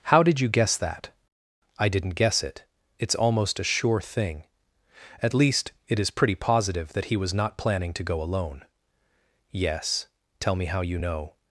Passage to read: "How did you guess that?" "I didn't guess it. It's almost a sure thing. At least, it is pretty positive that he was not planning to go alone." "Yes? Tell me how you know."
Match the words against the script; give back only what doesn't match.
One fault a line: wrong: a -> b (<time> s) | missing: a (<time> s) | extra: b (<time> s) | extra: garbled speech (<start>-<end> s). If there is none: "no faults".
no faults